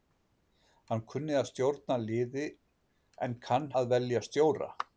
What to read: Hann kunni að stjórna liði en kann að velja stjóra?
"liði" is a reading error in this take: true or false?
false